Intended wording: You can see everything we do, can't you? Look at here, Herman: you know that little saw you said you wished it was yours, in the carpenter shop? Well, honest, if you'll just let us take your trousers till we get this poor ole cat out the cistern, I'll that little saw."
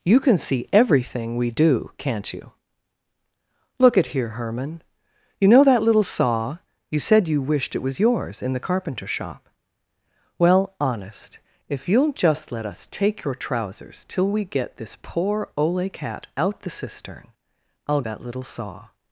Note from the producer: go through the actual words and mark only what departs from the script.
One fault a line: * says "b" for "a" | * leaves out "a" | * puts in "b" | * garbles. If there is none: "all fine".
all fine